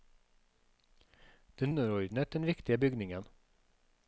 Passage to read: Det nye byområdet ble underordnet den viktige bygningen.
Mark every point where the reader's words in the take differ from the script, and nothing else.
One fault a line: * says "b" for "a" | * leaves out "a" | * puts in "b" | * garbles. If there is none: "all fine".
* leaves out "nye byområdet ble"